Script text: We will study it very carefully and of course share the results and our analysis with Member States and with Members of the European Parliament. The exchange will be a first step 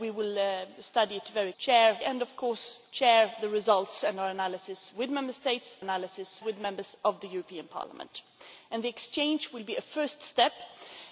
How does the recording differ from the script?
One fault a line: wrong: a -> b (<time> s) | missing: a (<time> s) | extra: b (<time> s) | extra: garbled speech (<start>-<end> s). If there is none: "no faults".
wrong: carefully -> share (1.6 s)
wrong: and -> analysis (5.8 s)